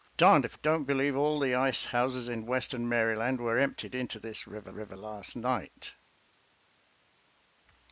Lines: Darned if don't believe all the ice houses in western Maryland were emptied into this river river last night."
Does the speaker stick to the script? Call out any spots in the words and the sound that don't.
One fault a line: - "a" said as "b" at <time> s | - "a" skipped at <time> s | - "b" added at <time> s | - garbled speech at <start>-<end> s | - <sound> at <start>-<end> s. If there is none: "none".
none